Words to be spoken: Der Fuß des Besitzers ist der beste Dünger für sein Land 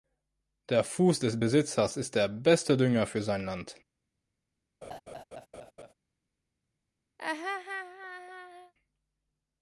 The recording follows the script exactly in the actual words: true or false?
true